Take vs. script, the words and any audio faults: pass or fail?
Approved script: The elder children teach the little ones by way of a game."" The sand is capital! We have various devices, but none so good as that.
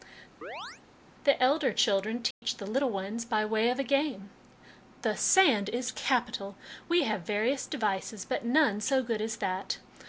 fail